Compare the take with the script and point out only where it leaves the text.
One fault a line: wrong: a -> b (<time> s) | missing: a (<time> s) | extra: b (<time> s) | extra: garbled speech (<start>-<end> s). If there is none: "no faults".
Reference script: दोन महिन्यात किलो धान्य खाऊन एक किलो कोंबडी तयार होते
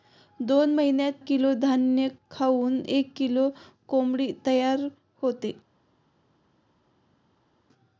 no faults